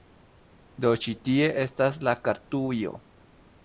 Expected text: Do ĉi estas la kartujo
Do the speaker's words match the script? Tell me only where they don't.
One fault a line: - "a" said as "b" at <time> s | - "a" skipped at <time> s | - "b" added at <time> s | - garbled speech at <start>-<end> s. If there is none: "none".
- "tie" added at 1.3 s